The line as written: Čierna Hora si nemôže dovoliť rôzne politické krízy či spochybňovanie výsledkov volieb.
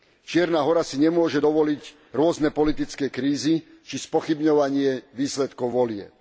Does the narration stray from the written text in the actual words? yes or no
no